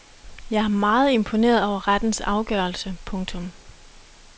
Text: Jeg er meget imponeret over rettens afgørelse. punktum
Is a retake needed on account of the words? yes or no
no